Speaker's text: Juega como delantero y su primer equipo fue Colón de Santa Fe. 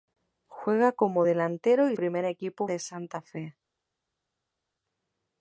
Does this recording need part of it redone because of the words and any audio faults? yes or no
yes